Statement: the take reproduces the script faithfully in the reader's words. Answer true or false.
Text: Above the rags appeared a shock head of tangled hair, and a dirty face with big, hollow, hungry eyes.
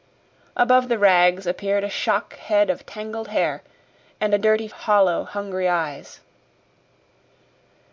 false